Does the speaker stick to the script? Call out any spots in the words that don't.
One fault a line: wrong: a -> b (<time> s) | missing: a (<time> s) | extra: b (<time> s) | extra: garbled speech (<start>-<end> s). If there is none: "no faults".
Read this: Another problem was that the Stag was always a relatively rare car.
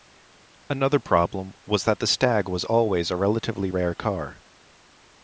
no faults